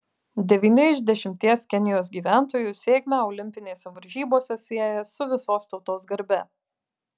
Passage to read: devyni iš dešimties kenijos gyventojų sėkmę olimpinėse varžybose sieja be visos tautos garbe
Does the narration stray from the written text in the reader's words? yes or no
yes